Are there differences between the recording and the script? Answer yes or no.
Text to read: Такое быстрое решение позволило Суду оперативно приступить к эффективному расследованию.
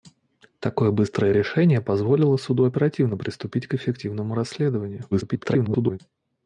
yes